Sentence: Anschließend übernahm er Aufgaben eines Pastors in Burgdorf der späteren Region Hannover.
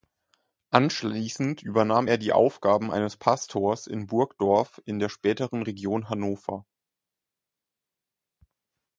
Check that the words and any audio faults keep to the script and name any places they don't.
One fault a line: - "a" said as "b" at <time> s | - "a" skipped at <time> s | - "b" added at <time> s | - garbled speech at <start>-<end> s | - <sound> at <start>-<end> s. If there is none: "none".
- "die" added at 2.2 s
- "in" added at 4.9 s